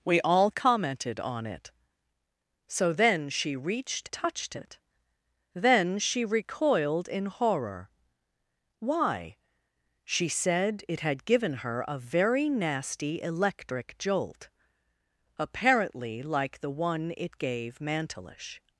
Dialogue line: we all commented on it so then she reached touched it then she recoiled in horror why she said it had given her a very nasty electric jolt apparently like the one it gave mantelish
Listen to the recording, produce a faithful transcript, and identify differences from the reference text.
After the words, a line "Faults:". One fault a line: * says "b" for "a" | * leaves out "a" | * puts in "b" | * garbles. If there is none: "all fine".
we all commented on it so then she reached touched it then she recoiled in horror why she said it had given her a very nasty electric jolt apparently like the one it gave mantelish
Faults:
all fine